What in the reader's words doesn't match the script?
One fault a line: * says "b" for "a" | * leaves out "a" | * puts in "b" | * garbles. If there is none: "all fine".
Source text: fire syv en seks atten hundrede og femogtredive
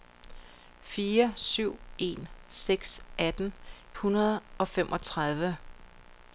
all fine